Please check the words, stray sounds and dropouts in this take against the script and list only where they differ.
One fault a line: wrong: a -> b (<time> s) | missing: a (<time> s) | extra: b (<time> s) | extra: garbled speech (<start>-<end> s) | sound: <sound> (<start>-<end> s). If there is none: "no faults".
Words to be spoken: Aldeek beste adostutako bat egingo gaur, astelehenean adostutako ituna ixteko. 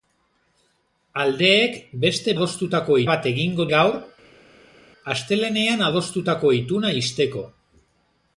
no faults